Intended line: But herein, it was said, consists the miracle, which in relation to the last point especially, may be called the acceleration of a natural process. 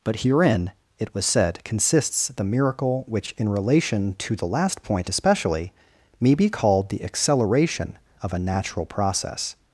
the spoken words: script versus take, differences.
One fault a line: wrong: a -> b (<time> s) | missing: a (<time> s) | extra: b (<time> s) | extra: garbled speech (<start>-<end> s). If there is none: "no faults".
no faults